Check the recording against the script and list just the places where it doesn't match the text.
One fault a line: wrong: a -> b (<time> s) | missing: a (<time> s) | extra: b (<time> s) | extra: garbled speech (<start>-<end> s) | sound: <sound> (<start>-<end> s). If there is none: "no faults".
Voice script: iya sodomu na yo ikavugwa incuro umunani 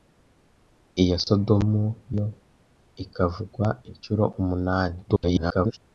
missing: na (1.8 s)
extra: garbled speech (5.1-5.8 s)